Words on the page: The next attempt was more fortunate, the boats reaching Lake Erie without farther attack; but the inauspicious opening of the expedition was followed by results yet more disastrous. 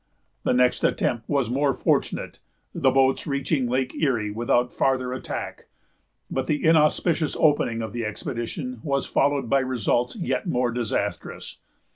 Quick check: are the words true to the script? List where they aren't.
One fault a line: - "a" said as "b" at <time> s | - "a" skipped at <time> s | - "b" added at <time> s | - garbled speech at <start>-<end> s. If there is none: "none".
none